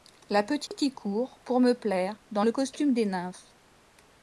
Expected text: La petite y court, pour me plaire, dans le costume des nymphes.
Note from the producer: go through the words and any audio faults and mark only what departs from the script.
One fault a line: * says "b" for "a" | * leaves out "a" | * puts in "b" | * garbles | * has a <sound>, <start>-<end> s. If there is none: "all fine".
* has a dropout, 0.7-0.7 s